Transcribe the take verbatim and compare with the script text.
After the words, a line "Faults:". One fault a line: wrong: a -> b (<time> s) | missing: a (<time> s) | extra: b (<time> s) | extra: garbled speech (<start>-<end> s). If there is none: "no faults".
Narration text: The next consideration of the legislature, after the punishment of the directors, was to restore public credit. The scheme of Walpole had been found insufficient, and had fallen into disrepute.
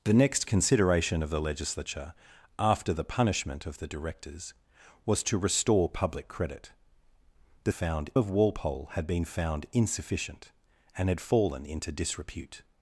The next consideration of the legislature, after the punishment of the directors, was to restore public credit. The found of Walpole had been found insufficient, and had fallen into disrepute.
Faults:
wrong: scheme -> found (7.7 s)